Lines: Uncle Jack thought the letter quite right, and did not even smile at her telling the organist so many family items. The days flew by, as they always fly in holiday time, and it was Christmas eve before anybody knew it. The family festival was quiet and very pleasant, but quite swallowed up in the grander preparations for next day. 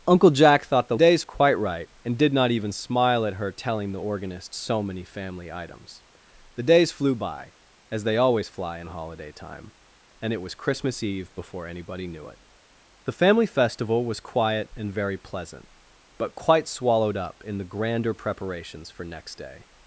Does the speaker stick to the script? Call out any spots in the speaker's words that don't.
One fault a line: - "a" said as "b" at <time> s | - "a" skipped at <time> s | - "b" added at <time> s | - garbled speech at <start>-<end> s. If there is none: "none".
- "letter" said as "days" at 0.9 s